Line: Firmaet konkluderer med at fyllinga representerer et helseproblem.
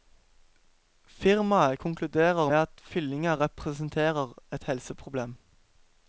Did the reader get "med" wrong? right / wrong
wrong